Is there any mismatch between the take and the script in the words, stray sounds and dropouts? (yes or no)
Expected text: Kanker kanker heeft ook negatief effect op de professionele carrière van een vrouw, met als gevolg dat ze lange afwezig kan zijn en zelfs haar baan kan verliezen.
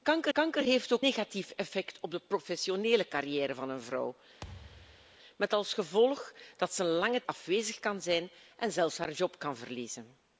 yes